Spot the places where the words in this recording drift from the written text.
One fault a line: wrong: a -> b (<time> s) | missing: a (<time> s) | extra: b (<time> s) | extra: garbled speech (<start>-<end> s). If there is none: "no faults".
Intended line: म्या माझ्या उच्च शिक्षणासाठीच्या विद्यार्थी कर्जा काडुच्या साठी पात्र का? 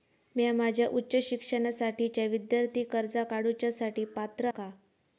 no faults